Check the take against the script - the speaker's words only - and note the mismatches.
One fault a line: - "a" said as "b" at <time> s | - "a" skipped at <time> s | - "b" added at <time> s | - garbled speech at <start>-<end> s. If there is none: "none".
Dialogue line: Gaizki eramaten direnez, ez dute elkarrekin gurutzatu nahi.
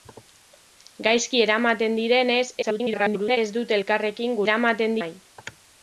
- garbled speech at 2.6-3.4 s
- "gurutzatu" said as "eramaten" at 4.4 s